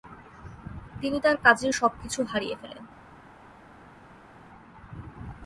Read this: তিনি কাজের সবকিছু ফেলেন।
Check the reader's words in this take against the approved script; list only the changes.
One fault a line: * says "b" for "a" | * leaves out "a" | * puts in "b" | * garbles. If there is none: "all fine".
* puts in "তার"
* puts in "হারিয়ে"